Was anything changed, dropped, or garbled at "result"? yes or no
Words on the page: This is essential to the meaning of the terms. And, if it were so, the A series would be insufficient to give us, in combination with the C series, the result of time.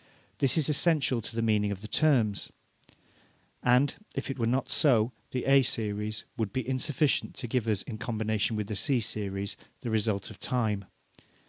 no